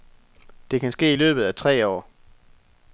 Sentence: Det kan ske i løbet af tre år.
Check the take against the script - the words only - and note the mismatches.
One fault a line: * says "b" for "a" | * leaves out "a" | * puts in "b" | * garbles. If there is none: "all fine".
all fine